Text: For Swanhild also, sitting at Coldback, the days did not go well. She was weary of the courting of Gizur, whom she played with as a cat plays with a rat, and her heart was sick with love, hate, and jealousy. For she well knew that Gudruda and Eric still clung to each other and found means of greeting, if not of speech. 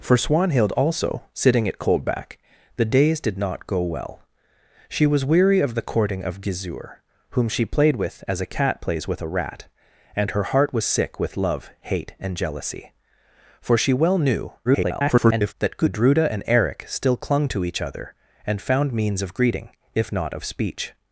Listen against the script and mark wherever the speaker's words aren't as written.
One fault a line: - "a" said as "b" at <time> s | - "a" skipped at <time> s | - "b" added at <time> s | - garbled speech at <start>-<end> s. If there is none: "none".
- garbled speech at 14.6-15.5 s